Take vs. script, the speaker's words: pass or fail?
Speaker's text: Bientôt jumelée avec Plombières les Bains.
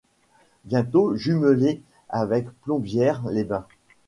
pass